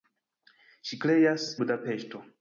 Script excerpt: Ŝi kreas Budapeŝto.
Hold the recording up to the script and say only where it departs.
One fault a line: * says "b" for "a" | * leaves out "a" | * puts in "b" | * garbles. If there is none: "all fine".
all fine